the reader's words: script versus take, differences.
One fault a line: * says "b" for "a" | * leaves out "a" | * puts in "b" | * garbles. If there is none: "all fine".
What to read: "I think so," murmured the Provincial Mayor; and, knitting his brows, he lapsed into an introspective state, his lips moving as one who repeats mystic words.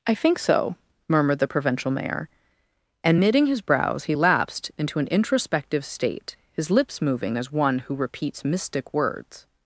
all fine